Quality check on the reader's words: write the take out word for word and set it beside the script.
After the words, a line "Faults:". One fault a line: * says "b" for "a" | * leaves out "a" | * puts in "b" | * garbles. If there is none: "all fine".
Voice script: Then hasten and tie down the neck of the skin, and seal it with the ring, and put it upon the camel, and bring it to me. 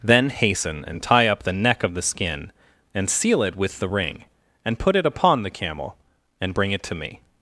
Then hasten and tie up the neck of the skin, and seal it with the ring, and put it upon the camel, and bring it to me.
Faults:
* says "up" for "down"